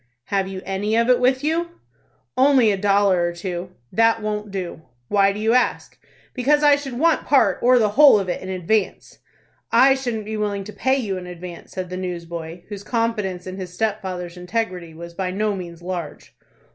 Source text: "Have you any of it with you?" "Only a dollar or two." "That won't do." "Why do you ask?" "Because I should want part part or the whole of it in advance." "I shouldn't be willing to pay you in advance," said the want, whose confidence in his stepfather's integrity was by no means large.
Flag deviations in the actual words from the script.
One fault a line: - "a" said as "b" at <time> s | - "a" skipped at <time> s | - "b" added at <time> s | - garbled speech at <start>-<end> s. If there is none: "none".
- "part" skipped at 7.6 s
- "want" said as "newsboy" at 12.0 s